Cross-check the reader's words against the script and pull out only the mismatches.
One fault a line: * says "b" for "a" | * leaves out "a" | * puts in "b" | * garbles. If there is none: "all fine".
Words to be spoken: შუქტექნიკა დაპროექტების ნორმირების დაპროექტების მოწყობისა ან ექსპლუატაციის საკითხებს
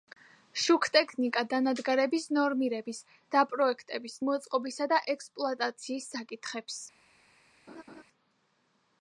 * says "დანადგარების" for "დაპროექტების"
* says "და" for "ან"